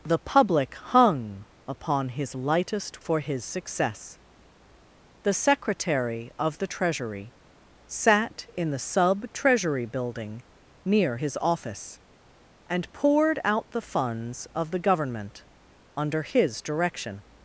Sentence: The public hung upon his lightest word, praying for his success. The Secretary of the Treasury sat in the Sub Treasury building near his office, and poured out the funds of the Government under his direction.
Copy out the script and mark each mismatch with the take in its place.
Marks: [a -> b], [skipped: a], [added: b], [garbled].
The public hung upon his lightest [skipped: word, praying] for his success. The Secretary of the Treasury sat in the Sub Treasury building near his office, and poured out the funds of the Government under his direction.